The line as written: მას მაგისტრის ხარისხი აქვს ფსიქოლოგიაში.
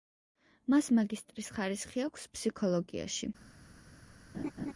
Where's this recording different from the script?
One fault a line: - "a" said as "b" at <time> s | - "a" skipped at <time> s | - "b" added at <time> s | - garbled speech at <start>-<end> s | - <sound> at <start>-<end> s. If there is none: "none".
- laugh at 4.3-4.7 s